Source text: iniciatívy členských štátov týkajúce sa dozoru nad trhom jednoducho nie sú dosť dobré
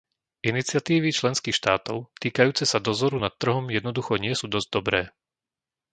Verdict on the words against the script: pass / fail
pass